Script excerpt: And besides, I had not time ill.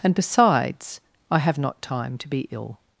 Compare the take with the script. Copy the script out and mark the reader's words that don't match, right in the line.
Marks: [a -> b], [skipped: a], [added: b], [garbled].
And besides, I [had -> have] not time [added: to be] ill.